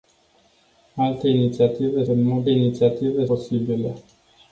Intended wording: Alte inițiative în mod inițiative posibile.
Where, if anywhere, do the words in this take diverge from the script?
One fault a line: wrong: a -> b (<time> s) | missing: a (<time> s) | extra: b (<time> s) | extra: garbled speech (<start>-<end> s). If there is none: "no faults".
no faults